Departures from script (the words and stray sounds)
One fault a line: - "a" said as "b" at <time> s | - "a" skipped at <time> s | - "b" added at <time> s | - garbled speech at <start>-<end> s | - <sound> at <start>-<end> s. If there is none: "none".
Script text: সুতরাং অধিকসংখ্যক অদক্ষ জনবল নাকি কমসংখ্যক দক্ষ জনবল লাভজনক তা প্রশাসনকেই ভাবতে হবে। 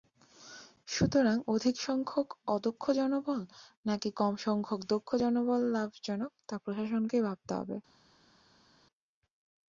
none